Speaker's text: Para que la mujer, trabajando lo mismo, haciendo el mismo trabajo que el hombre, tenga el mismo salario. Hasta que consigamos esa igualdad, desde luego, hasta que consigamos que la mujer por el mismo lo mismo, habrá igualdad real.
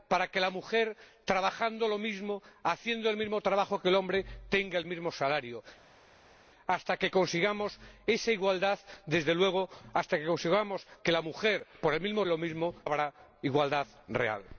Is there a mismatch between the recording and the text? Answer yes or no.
no